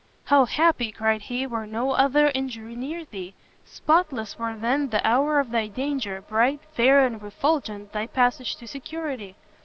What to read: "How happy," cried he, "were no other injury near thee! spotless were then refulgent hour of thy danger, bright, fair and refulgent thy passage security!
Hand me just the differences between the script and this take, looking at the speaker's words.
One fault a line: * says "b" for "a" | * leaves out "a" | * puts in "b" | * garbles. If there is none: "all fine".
* says "the" for "refulgent"
* puts in "to"